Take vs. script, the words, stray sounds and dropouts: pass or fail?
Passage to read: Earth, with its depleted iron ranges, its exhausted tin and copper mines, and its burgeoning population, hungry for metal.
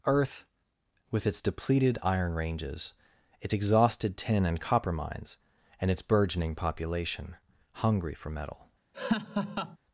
fail